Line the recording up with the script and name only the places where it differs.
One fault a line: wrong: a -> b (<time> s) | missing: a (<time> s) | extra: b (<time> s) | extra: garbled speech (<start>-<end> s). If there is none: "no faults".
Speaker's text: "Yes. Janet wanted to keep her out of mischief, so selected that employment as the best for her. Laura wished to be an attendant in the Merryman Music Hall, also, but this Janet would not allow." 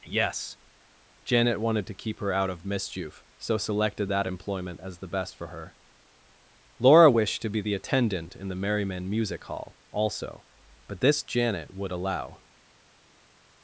wrong: an -> the (7.6 s)
missing: not (11.9 s)